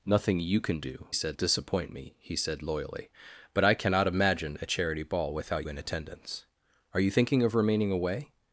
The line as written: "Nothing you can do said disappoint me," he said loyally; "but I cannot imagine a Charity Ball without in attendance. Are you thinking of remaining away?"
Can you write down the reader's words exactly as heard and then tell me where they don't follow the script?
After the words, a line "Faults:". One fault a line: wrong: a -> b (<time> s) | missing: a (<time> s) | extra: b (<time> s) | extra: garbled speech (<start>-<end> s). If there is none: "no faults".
"Nothing you can do said disappoint me," he said loyally; "but I cannot imagine a Charity Ball without in attendance. Are you thinking of remaining away?"
Faults:
no faults